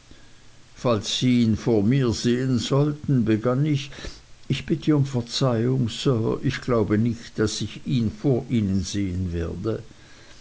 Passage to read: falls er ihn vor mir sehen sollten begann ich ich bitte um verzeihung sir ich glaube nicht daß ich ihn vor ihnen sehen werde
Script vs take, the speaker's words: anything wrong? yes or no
yes